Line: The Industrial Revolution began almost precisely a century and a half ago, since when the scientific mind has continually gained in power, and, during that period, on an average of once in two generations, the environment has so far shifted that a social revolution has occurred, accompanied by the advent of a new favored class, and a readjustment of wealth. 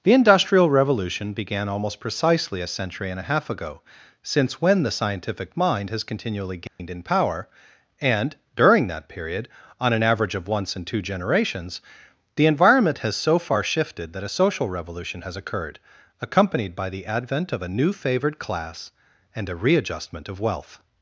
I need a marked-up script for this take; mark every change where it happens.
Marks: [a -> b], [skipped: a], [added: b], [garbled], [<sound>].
The Industrial Revolution began almost precisely a century and a half ago, since when the scientific mind has continually gained [dropout] in power, and, during that period, on an average of once in two generations, the environment has so far shifted that a social revolution has occurred, accompanied by the advent of a new favored class, and a readjustment of wealth.